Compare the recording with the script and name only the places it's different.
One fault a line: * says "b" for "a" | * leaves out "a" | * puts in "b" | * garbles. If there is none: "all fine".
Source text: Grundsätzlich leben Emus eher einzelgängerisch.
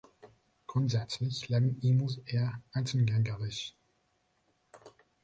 all fine